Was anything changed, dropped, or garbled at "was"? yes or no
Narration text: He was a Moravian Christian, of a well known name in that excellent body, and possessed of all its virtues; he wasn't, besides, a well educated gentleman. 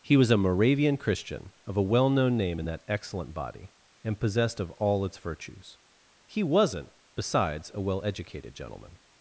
no